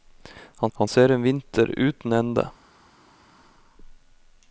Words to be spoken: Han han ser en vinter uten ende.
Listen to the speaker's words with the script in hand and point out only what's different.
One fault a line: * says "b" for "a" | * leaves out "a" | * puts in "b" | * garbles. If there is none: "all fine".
all fine